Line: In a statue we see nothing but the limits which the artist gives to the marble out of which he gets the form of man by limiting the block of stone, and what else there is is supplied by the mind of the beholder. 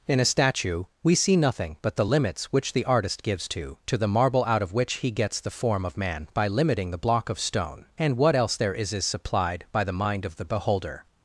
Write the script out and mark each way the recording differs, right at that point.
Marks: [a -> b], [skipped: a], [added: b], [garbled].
In a statue we see nothing but the limits which the artist gives to [added: to] the marble out of which he gets the form of man by limiting the block of stone, and what else there is is supplied by the mind of the beholder.